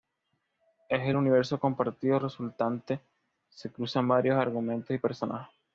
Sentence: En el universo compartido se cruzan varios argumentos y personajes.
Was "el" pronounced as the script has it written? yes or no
yes